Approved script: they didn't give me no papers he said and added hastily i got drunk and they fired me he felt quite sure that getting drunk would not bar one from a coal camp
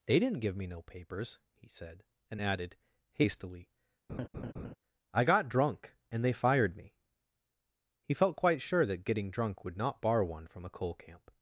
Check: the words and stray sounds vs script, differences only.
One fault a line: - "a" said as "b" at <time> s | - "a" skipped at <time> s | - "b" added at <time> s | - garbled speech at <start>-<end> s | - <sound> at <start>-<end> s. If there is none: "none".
- laugh at 4.1-4.8 s